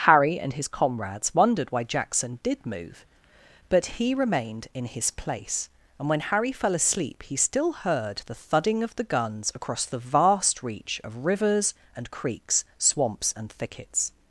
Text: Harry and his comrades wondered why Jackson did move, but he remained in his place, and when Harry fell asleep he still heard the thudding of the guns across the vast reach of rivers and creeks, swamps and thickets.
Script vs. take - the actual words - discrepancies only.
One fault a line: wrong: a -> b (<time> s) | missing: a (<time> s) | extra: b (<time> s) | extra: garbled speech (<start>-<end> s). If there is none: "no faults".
no faults